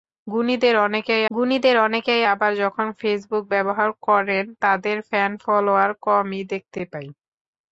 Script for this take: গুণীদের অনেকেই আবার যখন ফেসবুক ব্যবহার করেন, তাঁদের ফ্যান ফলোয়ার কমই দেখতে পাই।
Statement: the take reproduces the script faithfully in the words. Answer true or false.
false